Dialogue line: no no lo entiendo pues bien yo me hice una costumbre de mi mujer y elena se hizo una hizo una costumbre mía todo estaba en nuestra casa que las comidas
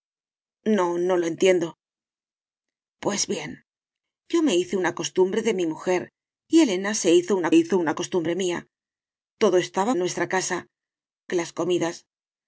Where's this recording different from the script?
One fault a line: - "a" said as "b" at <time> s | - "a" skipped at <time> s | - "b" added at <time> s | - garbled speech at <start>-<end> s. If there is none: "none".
none